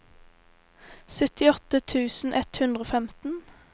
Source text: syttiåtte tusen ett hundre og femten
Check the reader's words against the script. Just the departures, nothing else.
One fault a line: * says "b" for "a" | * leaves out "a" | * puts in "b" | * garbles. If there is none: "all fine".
all fine